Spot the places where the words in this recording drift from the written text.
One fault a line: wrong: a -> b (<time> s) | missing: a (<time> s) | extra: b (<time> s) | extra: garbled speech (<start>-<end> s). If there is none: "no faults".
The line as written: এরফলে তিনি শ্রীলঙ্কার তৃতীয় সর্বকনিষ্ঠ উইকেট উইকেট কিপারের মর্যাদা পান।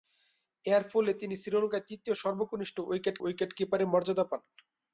no faults